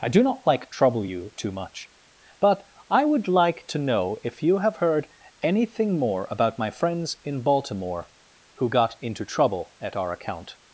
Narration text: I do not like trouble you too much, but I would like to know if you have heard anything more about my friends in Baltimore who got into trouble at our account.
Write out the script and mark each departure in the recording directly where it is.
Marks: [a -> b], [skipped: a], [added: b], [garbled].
I do not like trouble you too much, but I would like to know if you have heard anything more about my friends in Baltimore who got into trouble at our account.